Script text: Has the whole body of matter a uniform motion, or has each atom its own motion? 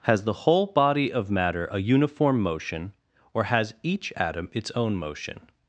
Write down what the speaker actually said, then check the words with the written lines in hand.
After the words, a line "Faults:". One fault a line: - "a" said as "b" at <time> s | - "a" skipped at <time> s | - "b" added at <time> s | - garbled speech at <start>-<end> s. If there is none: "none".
Has the whole body of matter a uniform motion, or has each atom its own motion?
Faults:
none